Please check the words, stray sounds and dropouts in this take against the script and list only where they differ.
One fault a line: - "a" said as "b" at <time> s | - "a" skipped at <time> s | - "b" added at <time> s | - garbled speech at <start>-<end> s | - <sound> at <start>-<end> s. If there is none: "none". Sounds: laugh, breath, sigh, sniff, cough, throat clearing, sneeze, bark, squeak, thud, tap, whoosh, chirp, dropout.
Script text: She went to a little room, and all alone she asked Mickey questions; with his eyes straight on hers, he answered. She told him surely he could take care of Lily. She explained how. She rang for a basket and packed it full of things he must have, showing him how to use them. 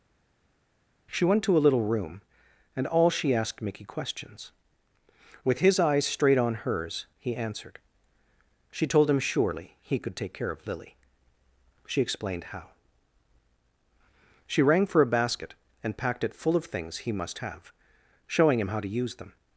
- "alone" skipped at 3.1 s